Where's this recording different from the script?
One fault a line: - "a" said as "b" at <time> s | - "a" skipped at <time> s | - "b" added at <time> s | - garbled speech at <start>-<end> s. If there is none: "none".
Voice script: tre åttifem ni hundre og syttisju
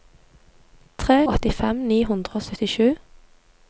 none